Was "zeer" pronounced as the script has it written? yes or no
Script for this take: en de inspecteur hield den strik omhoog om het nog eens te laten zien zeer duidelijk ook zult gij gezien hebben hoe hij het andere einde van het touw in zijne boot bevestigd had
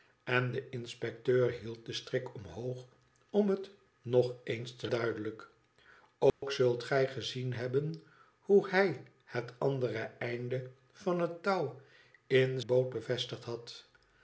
no